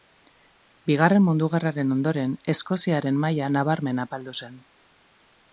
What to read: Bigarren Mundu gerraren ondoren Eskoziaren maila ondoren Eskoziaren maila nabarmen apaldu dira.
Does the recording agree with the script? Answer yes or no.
no